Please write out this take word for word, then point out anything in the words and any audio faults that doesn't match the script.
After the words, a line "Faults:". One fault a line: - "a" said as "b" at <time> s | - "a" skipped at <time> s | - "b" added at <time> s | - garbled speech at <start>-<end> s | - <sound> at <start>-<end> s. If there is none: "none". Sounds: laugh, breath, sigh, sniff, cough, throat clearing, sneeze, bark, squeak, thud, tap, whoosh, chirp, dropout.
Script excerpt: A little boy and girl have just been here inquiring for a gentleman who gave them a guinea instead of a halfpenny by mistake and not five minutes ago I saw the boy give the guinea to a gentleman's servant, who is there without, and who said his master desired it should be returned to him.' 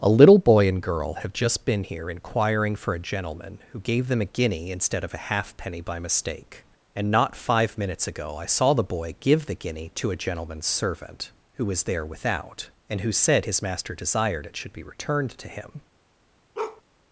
A little boy and girl have just been here inquiring for a gentleman who gave them a guinea instead of a halfpenny by mistake and not five minutes ago I saw the boy give the guinea to a gentleman's servant, who was there without, and who said his master desired it should be returned to him.'
Faults:
- "is" said as "was" at 11.7 s
- bark at 16.5-16.8 s